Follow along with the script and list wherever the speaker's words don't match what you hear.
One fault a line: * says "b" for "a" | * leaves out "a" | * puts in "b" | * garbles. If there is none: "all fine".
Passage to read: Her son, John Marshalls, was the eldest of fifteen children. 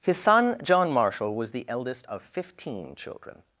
* says "His" for "Her"
* says "Marshall" for "Marshalls"